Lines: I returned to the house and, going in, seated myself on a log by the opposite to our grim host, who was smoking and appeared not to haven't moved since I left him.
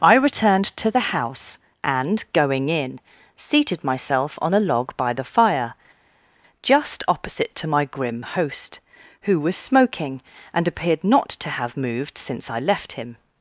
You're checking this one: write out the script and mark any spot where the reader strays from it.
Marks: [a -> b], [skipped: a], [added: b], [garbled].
I returned to the house and, going in, seated myself on a log by the [added: fire just] opposite to [our -> my] grim host, who was smoking and appeared not to [haven't -> have] moved since I left him.